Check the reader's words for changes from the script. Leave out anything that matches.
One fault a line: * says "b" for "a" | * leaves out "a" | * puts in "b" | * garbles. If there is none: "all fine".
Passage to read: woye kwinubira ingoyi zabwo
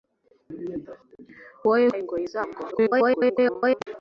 * leaves out "kwinubira"
* garbles